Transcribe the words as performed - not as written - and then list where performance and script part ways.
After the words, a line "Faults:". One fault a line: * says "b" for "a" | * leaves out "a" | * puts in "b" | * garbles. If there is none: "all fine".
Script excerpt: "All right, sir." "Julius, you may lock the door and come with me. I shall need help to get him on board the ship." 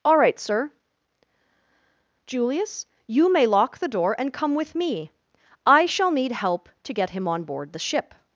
"All right, sir." "Julius, you may lock the door and come with me. I shall need help to get him on board the ship."
Faults:
all fine